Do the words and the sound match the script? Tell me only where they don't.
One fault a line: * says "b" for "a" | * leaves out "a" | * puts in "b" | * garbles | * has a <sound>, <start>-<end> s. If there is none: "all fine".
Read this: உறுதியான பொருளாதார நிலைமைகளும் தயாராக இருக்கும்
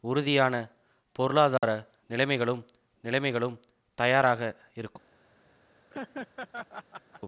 * has a dropout, 1.6-1.6 s
* puts in "நிலைமைகளும்"
* has a laugh, 5.9-7.2 s